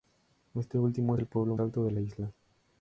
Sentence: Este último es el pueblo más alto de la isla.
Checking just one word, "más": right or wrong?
wrong